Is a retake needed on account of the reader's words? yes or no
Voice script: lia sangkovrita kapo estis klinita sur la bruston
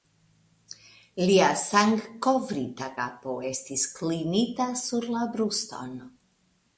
no